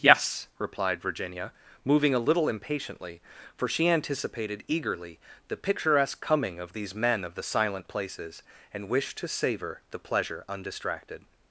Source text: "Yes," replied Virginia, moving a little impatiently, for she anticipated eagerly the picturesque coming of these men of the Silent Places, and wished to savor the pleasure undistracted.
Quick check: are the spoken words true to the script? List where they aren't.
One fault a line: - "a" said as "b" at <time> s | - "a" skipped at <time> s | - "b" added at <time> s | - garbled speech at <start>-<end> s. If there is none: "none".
none